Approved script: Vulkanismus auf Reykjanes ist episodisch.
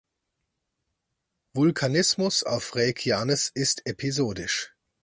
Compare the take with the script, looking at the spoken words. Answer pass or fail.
pass